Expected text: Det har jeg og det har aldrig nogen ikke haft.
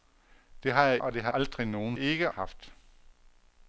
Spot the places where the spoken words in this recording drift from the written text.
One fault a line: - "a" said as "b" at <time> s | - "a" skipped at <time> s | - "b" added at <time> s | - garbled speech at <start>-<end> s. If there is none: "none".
none